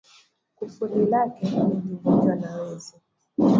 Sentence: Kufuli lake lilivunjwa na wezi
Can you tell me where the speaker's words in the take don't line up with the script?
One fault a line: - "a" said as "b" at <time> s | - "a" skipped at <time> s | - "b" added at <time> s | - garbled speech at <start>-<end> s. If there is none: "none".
none